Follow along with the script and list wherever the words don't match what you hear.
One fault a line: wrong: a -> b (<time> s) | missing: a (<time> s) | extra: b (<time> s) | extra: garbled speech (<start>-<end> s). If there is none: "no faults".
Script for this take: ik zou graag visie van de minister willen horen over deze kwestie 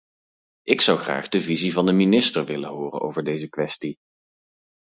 extra: de (1.3 s)